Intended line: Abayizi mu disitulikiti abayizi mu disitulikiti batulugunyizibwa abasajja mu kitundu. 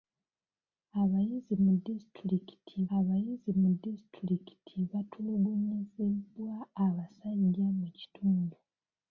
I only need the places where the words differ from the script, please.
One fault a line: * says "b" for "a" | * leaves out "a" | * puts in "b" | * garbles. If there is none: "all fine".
all fine